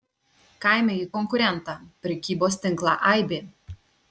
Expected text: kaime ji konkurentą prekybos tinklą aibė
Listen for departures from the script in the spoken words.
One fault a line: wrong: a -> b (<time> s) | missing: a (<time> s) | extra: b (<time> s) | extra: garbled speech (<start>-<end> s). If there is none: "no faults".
no faults